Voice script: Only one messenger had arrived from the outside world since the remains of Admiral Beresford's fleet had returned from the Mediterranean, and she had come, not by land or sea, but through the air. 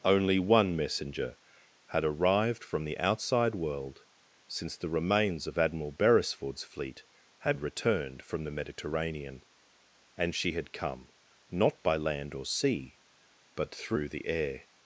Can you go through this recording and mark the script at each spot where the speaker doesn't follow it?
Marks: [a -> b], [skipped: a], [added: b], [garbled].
Only one messenger had arrived from the outside world since the remains of Admiral Beresford's fleet had returned from the Mediterranean, and she had come, not by land or sea, but through the air.